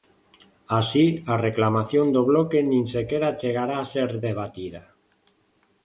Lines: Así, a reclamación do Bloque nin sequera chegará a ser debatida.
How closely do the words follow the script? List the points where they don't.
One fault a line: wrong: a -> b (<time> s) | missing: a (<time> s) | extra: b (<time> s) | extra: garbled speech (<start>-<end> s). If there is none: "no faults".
no faults